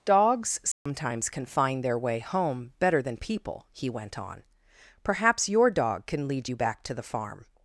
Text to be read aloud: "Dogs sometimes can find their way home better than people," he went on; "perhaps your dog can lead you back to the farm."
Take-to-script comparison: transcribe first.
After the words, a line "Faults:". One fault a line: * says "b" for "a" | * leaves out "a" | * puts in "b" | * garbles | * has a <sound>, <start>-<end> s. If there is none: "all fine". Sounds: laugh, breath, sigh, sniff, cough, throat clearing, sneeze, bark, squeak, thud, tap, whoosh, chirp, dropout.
"Dogs sometimes can find their way home better than people," he went on; "perhaps your dog can lead you back to the farm."
Faults:
* has a dropout, 0.7-0.9 s